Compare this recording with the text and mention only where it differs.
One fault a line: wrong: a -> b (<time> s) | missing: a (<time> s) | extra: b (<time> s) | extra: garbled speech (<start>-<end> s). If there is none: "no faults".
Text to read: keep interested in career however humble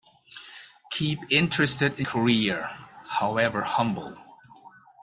no faults